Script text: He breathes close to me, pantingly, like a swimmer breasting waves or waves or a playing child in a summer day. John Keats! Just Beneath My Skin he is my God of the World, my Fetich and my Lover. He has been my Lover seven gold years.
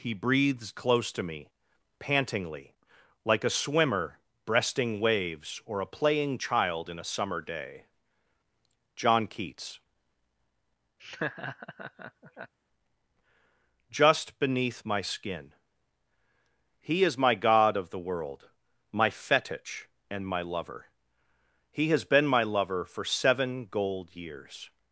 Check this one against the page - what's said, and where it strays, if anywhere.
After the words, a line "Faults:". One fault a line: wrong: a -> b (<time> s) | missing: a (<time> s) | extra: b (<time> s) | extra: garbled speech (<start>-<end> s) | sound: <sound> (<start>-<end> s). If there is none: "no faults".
He breathes close to me, pantingly, like a swimmer breasting waves or a playing child in a summer day. John Keats! Just Beneath My Skin he is my God of the World, my Fetich and my Lover. He has been my Lover for seven gold years.
Faults:
missing: waves or (5.8 s)
sound: laugh (11.0-12.5 s)
extra: for (22.8 s)